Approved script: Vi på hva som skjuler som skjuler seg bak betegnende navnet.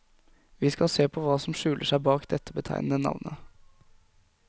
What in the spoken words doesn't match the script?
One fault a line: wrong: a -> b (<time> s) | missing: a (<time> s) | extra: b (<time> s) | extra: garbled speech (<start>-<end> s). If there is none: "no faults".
extra: skal se (0.7 s)
missing: som skjuler (1.9 s)
extra: dette (2.3 s)